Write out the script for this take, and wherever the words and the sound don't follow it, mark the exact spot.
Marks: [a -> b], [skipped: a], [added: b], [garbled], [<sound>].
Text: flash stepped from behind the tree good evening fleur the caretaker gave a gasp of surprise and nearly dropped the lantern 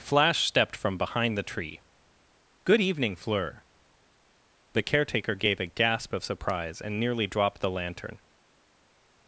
flash stepped from behind the tree good evening fleur the caretaker gave a gasp of surprise and nearly dropped the lantern